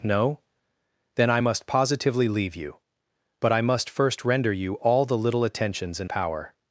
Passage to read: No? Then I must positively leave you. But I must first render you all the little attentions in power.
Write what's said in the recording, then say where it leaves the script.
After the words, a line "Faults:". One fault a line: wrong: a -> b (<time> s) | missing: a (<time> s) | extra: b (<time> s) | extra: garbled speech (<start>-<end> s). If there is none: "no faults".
No? Then I must positively leave you. But I must first render you all the little attentions in power.
Faults:
no faults